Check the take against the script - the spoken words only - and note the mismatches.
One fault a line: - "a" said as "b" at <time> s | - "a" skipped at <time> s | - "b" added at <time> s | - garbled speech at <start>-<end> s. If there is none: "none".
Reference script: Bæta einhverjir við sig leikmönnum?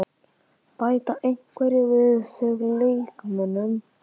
none